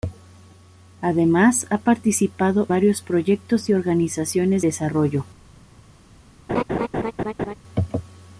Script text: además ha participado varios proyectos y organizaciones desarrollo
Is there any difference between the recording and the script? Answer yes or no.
no